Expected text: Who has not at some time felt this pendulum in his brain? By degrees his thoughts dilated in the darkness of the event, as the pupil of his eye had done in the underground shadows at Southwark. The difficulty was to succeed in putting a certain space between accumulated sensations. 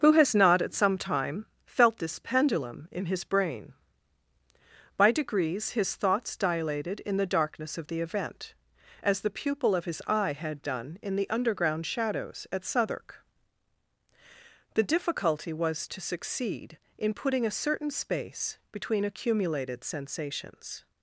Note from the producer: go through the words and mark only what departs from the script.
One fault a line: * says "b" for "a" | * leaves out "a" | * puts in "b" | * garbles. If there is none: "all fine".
all fine